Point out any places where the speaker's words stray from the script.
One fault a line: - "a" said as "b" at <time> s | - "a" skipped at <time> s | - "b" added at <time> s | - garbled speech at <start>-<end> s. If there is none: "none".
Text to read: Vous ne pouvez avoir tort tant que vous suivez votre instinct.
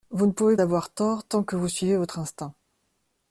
none